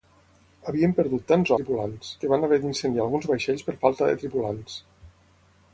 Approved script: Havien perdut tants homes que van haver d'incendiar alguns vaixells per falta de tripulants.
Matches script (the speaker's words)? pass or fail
fail